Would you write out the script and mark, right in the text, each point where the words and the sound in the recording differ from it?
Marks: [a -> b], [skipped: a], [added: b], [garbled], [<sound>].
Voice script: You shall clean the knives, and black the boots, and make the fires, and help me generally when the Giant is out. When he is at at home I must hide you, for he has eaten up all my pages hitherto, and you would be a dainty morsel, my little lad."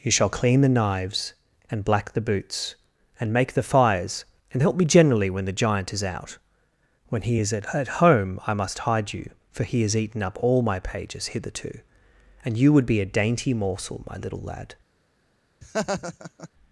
You shall clean the knives, and black the boots, and make the fires, and help me generally when the Giant is out. When he is at at home I must hide you, for he has eaten up all my pages hitherto, and you would be a dainty morsel, my little lad." [laugh]